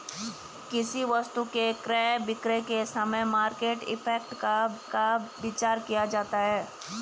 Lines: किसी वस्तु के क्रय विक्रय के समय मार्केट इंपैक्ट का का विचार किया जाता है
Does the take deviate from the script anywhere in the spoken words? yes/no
no